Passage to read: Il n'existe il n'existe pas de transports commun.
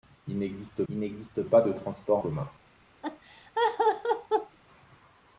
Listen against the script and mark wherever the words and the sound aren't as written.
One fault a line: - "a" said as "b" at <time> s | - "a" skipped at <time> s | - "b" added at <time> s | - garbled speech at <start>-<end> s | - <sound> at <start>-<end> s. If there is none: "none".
- laugh at 3.0-4.6 s